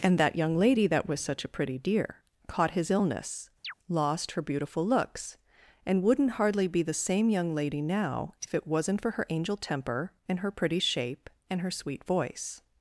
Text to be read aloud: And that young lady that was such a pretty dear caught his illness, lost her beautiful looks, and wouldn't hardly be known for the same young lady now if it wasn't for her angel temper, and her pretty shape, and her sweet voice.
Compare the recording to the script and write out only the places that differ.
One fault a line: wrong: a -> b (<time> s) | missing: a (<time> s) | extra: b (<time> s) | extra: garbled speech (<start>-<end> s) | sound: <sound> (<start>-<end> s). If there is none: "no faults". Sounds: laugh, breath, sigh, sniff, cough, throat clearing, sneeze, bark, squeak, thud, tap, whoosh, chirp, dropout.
sound: chirp (3.6-3.7 s)
missing: known for (6.8 s)